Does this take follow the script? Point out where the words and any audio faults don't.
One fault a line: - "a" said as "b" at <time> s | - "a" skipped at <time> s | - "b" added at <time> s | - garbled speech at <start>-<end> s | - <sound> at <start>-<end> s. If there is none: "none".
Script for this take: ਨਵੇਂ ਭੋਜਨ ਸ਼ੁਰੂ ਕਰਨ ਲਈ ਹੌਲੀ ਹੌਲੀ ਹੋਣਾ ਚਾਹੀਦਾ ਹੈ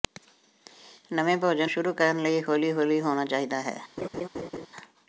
- laugh at 4.0-4.7 s